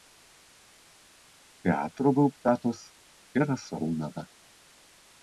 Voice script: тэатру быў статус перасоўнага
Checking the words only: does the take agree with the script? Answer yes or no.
yes